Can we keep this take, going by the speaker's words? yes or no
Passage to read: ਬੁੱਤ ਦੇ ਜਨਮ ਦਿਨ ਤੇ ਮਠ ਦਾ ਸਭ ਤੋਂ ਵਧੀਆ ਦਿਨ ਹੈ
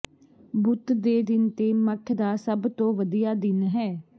no